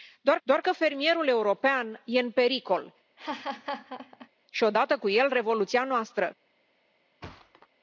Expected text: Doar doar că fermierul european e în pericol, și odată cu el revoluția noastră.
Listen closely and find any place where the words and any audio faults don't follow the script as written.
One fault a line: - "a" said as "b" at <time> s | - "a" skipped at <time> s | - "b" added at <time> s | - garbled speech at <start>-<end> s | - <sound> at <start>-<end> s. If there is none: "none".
- laugh at 3.2-4.3 s
- thud at 7.2-7.7 s